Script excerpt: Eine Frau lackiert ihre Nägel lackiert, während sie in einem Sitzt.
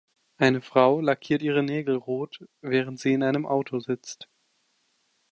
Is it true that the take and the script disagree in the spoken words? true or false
true